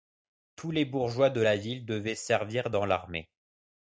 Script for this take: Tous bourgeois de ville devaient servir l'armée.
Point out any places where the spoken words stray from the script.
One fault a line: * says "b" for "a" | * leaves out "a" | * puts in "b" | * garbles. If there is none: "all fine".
* puts in "les"
* puts in "la"
* puts in "dans"